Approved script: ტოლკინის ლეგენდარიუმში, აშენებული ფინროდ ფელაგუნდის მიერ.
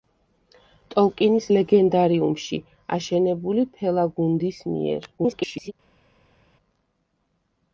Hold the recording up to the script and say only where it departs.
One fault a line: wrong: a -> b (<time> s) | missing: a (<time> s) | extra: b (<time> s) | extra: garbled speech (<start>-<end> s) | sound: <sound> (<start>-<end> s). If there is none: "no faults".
missing: ფინროდ (3.7 s)
extra: garbled speech (5.2-5.7 s)